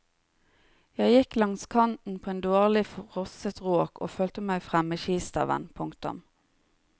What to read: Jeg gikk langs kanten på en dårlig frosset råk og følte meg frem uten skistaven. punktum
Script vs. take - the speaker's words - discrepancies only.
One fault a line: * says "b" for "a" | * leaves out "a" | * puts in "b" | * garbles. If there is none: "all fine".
* says "med" for "uten"